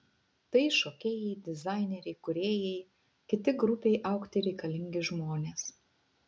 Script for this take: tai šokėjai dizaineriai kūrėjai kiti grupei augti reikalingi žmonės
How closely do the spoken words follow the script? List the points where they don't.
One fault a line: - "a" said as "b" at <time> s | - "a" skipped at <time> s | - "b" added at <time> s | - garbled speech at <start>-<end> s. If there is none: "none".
none